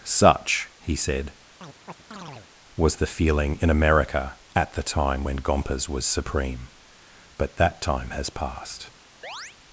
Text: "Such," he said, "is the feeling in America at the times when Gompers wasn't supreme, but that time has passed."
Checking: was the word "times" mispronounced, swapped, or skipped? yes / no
yes